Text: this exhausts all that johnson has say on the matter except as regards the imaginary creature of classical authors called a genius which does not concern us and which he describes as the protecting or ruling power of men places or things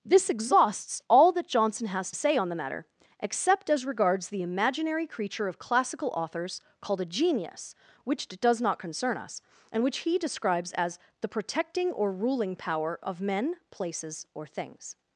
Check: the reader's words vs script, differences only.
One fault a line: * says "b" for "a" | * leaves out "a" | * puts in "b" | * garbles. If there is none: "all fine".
all fine